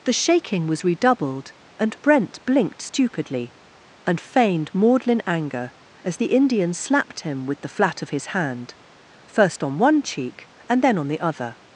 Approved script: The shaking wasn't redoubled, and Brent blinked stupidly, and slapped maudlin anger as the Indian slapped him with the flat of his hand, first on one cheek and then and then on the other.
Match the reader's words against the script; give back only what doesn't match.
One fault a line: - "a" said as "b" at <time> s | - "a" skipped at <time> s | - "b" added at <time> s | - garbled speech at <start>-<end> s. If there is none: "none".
- "wasn't" said as "was" at 0.7 s
- "slapped" said as "feigned" at 4.2 s
- "and then" skipped at 11.0 s